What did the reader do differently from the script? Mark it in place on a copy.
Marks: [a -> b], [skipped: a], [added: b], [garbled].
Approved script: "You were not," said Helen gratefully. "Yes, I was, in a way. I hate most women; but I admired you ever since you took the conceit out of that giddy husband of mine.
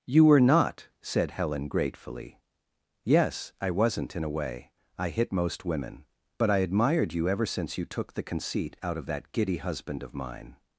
"You were not," said Helen gratefully. "Yes, I [was, -> wasn't] in a way. I [hate -> hit] most women; but I admired you ever since you took the conceit out of that giddy husband of mine.